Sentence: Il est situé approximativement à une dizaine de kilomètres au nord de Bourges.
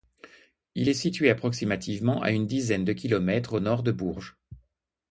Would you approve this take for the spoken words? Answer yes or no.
yes